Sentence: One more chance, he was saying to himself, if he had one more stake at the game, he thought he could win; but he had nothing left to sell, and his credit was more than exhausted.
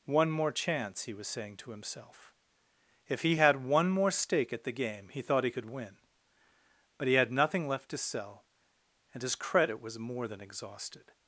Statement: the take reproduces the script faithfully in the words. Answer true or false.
true